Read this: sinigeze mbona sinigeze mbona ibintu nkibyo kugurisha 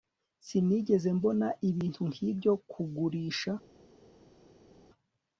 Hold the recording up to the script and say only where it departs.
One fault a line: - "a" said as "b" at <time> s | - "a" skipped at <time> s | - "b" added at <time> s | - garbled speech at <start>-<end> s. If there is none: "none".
- "sinigeze mbona" skipped at 1.5 s